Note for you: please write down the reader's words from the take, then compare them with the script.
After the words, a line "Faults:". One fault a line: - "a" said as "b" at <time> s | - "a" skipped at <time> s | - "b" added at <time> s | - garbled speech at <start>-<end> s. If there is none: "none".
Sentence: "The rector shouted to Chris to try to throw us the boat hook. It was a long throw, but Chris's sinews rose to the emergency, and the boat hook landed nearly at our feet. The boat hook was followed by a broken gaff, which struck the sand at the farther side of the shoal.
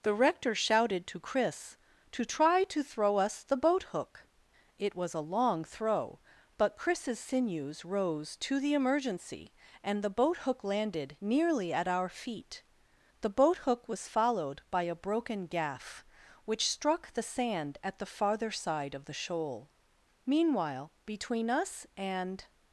"The rector shouted to Chris to try to throw us the boat hook. It was a long throw, but Chris's sinews rose to the emergency, and the boat hook landed nearly at our feet. The boat hook was followed by a broken gaff, which struck the sand at the farther side of the shoal. "Meanwhile between us and
Faults:
- "Meanwhile between us and" added at 20.2 s